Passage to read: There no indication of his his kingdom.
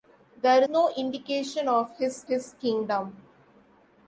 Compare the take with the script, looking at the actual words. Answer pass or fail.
pass